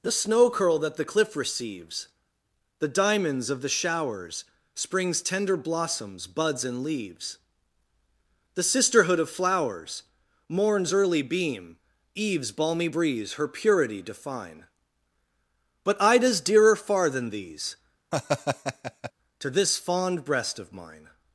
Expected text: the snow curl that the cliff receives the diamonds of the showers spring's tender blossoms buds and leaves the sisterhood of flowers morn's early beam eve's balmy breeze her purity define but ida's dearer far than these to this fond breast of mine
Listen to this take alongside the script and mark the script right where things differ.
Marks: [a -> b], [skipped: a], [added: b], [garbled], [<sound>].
the snow curl that the cliff receives the diamonds of the showers spring's tender blossoms buds and leaves the sisterhood of flowers morn's early beam eve's balmy breeze her purity define but ida's dearer far than these [laugh] to this fond breast of mine